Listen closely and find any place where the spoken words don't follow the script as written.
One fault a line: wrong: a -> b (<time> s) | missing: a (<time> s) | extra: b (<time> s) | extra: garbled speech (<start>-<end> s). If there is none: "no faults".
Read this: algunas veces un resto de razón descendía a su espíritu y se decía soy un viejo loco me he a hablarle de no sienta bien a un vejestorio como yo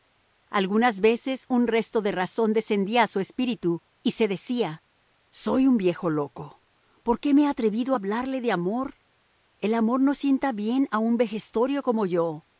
extra: por qué (7.0 s)
extra: atrevido (7.5 s)
extra: amor el amor (8.5 s)